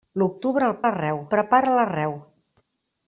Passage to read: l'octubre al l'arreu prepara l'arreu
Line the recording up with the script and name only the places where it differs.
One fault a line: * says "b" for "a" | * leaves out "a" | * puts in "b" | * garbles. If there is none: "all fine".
all fine